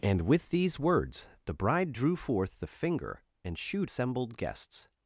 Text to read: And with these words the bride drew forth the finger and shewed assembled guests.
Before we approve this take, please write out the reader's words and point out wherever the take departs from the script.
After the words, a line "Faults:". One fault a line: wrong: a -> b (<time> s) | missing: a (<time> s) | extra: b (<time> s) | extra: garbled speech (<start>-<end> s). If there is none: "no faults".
And with these words the bride drew forth the finger and shewed assembled guests.
Faults:
no faults